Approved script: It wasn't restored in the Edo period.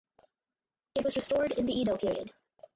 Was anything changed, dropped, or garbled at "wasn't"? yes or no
yes